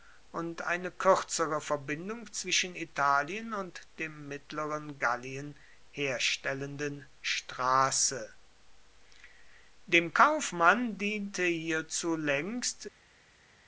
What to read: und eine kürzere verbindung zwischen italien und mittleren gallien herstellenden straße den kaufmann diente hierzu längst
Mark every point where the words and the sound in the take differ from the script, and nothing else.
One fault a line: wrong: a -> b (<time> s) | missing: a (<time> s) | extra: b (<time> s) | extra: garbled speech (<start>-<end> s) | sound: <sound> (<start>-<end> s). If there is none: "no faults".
extra: dem (4.0 s)
wrong: den -> dem (9.9 s)